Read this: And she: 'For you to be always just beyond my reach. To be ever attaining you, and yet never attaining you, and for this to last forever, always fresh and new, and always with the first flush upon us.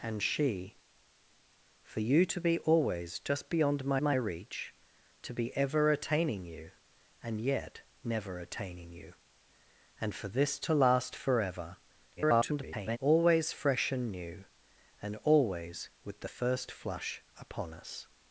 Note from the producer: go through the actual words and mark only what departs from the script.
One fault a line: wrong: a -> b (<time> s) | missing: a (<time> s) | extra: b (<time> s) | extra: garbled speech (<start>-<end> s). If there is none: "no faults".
extra: my (4.0 s)
extra: garbled speech (12.2-13.0 s)